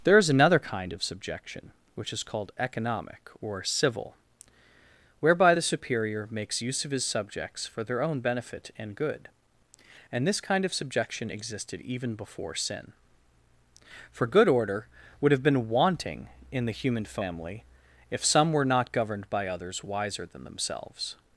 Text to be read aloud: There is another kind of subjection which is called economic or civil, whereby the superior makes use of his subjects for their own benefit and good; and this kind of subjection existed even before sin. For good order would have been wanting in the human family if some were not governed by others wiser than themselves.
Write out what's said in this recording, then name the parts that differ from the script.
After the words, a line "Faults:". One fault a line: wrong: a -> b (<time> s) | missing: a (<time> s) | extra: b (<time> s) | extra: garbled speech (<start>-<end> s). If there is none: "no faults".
There is another kind of subjection which is called economic or civil, whereby the superior makes use of his subjects for their own benefit and good; and this kind of subjection existed even before sin. For good order would have been wanting in the human family if some were not governed by others wiser than themselves.
Faults:
no faults